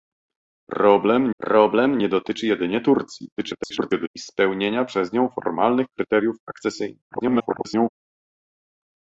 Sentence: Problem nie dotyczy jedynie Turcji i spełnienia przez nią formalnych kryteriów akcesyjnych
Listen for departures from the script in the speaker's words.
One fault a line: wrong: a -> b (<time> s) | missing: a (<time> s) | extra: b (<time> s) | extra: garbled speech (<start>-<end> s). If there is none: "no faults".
extra: problem (1.4 s)
extra: garbled speech (3.4-4.1 s)
extra: garbled speech (7.1-7.9 s)